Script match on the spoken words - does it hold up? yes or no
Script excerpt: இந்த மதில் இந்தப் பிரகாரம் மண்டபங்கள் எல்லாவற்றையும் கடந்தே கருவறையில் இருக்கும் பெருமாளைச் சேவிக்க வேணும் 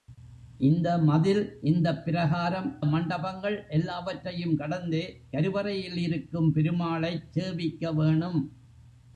yes